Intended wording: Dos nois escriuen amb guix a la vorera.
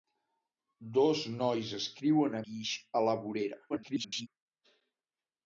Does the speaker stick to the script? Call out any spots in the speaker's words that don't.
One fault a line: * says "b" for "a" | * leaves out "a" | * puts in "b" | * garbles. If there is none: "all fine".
* leaves out "amb"
* garbles